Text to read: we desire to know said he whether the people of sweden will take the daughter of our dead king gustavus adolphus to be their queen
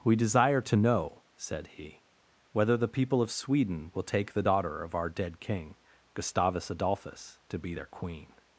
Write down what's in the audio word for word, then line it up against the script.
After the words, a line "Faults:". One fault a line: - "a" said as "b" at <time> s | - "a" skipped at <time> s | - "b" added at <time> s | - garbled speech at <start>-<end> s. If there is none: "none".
we desire to know said he whether the people of sweden will take the daughter of our dead king gustavus adolphus to be their queen
Faults:
none